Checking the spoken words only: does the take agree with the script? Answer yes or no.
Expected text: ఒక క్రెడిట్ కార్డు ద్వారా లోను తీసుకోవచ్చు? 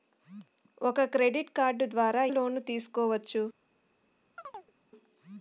yes